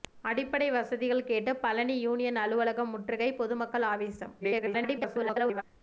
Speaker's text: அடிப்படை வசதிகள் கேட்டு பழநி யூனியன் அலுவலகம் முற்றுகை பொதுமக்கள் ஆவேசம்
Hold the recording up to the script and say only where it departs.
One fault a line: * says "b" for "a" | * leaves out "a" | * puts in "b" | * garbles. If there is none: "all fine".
* garbles